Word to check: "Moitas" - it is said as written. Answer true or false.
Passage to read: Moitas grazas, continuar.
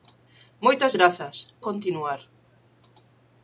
true